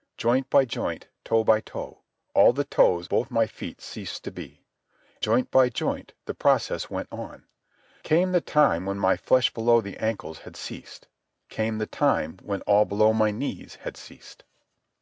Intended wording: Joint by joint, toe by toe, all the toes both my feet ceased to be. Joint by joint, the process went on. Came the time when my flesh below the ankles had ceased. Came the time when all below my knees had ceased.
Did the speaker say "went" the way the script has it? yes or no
yes